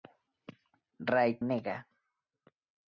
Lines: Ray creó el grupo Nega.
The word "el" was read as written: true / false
false